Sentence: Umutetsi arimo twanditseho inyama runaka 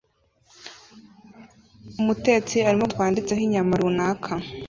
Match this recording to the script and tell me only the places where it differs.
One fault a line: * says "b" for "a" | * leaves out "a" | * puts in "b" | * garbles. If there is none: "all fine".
all fine